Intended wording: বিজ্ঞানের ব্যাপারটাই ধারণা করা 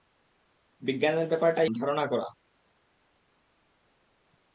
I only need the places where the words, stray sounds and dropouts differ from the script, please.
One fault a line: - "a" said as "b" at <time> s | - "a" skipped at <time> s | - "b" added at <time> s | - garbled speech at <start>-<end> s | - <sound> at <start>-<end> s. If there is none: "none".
none